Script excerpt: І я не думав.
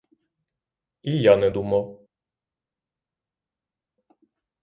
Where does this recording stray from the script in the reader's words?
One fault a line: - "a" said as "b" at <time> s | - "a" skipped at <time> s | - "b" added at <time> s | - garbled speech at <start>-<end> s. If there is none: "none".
none